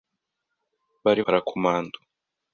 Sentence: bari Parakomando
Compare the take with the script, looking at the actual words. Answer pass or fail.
pass